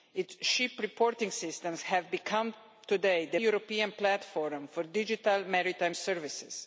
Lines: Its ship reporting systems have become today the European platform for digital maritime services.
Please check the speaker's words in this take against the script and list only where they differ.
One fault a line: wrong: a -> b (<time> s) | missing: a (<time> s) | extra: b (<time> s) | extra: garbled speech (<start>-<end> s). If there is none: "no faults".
no faults